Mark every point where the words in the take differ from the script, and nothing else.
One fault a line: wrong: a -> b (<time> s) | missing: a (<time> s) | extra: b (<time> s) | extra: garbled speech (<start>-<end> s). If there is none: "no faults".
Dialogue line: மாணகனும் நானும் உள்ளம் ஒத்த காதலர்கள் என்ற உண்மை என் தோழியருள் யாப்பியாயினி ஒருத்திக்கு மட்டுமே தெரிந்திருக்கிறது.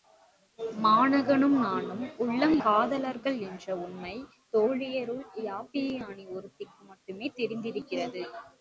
missing: ஒத்த (2.5 s)
missing: என் (4.1 s)